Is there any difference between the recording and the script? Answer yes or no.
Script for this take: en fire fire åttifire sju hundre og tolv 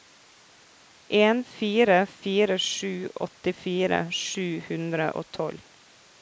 yes